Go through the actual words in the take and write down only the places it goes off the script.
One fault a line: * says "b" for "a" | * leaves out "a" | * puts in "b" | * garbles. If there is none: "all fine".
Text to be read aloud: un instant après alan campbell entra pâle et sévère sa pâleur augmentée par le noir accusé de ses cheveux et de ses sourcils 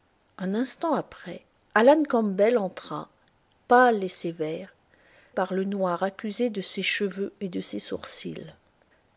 * leaves out "sa pâleur augmentée"